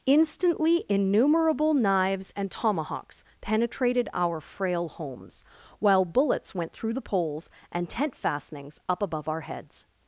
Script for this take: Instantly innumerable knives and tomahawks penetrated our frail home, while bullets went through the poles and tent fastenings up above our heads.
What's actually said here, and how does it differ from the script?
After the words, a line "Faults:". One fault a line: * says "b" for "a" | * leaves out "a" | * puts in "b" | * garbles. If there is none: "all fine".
Instantly innumerable knives and tomahawks penetrated our frail homes, while bullets went through the poles and tent fastenings up above our heads.
Faults:
* says "homes" for "home"